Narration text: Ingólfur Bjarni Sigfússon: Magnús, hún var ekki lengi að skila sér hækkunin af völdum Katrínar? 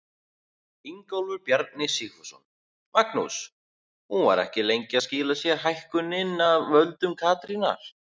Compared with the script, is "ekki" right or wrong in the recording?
right